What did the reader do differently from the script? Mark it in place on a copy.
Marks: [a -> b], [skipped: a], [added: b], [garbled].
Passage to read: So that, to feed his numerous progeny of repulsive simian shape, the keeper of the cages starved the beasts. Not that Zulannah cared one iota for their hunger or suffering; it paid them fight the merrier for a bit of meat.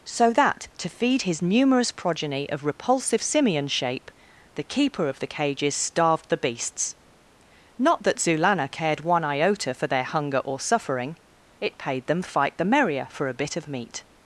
So that, to feed his numerous progeny of repulsive simian shape, the keeper of the cages starved the beasts. Not that Zulannah cared one iota for their hunger or suffering; it paid them fight the merrier for a bit of meat.